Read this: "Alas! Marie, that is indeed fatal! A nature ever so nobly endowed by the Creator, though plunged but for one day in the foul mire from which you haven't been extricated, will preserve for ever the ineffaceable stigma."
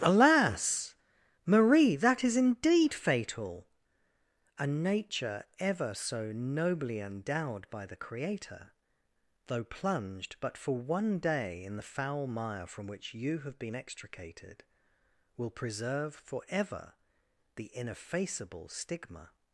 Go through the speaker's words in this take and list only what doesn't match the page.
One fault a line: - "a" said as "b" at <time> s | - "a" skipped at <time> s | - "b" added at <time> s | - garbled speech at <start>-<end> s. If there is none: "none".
- "haven't" said as "have" at 13.4 s